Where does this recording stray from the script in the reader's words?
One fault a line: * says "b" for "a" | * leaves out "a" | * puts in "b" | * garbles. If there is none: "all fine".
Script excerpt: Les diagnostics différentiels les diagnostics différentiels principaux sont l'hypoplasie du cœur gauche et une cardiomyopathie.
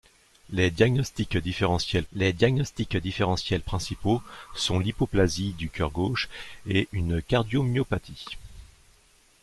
all fine